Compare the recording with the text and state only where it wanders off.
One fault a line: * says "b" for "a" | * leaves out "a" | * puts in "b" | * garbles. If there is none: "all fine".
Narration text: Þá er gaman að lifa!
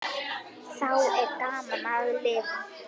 all fine